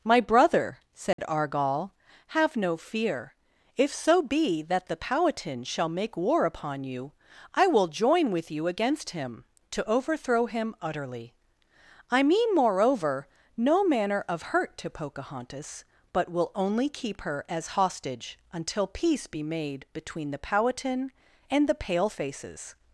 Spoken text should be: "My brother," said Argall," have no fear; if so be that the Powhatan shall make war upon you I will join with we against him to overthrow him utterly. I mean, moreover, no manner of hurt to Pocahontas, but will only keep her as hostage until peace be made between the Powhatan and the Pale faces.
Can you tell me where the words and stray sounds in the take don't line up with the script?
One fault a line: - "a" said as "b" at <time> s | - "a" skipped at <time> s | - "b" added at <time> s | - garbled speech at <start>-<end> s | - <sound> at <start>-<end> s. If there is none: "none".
- dropout at 1.1-1.2 s
- "we" said as "you" at 8.5 s